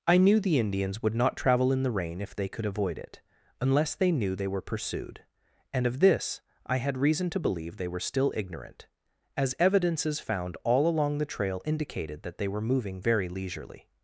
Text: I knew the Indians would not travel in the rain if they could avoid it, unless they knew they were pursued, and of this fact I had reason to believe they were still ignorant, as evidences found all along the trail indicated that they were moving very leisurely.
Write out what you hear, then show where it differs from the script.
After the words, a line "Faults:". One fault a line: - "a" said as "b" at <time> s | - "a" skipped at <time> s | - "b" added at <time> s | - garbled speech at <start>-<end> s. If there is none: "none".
I knew the Indians would not travel in the rain if they could avoid it, unless they knew they were pursued, and of this I had reason to believe they were still ignorant, as evidences found all along the trail indicated that they were moving very leisurely.
Faults:
- "fact" skipped at 6.4 s